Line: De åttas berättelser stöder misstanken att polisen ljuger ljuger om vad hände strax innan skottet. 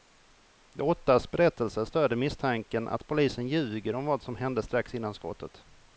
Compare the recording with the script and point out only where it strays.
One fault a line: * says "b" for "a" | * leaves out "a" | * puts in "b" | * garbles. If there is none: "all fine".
* leaves out "ljuger"
* puts in "som"